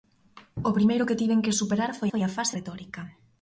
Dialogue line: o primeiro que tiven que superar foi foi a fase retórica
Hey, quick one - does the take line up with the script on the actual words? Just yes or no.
yes